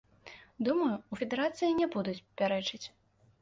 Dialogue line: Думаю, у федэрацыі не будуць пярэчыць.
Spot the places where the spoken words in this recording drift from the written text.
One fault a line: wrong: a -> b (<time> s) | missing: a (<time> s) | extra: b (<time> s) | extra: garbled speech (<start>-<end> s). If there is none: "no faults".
no faults